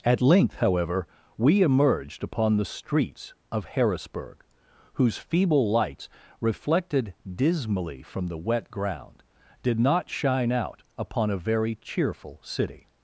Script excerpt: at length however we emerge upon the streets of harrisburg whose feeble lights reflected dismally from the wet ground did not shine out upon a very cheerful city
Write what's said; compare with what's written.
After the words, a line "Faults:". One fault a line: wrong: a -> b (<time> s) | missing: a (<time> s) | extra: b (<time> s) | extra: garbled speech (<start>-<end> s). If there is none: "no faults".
at length however we emerged upon the streets of harrisburg whose feeble lights reflected dismally from the wet ground did not shine out upon a very cheerful city
Faults:
wrong: emerge -> emerged (1.6 s)